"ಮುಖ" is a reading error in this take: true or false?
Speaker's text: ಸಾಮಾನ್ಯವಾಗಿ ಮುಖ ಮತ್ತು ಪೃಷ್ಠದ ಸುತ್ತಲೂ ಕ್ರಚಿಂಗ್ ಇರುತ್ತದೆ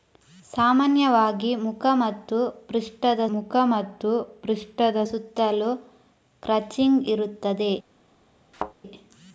false